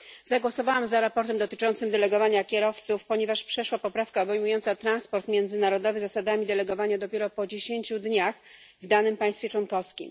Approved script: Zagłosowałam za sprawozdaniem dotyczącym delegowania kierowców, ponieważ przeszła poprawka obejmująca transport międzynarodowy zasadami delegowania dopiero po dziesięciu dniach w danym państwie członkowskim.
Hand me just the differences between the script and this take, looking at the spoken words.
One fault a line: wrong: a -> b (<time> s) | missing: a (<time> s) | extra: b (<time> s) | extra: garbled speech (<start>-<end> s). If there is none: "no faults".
no faults